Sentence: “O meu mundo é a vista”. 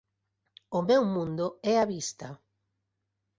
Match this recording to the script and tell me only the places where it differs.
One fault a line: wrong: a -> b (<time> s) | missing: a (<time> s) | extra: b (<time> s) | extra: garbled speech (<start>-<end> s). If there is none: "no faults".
no faults